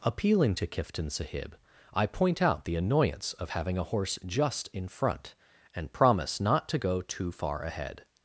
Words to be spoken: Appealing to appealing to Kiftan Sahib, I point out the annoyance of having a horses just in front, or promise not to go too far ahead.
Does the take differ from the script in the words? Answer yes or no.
yes